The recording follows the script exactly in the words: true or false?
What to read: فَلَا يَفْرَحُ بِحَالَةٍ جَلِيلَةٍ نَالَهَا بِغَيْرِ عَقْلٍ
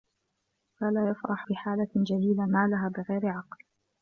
true